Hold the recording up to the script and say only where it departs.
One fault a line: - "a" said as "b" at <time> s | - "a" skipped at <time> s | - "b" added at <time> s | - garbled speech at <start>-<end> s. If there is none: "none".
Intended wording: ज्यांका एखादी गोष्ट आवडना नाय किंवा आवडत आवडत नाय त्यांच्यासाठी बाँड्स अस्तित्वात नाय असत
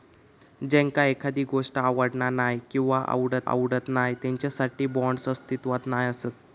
none